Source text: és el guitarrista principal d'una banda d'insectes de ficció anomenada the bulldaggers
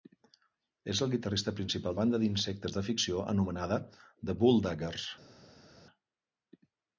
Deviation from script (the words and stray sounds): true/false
true